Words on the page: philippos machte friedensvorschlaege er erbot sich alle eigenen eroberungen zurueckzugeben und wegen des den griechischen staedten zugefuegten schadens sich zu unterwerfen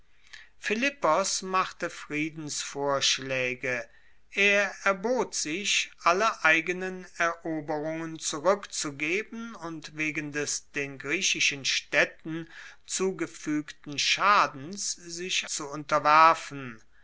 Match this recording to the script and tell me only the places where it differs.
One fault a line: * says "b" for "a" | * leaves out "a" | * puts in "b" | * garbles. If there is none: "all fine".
all fine